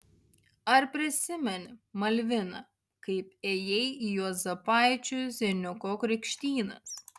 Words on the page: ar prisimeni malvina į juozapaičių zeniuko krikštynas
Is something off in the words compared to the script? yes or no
yes